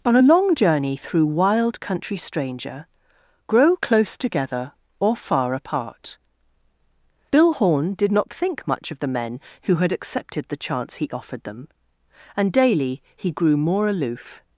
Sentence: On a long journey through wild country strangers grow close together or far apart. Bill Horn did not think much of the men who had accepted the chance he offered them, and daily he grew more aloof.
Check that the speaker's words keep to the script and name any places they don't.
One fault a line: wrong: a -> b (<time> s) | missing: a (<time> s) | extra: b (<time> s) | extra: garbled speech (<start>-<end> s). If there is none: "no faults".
wrong: strangers -> stranger (2.1 s)